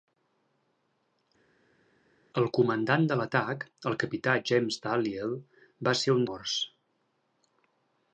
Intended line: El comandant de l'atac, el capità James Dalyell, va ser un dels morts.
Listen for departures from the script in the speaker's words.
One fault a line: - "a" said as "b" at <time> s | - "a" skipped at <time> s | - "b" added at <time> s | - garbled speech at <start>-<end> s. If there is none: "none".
- "dels" skipped at 6.3 s